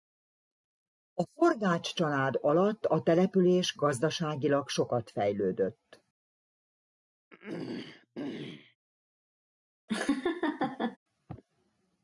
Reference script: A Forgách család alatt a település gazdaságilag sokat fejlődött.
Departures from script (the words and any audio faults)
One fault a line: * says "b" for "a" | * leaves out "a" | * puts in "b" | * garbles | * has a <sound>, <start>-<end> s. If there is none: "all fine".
* has a throat clearing, 7.3-8.8 s
* has a laugh, 9.9-11.0 s